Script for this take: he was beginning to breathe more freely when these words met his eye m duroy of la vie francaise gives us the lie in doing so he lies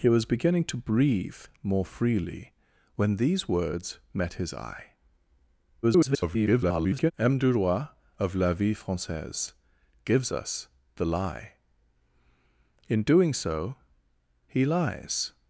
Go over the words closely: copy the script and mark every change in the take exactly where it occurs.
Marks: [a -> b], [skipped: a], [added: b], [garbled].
he was beginning to breathe more freely when these words met his eye [garbled] m duroy of la vie francaise gives us the lie in doing so he lies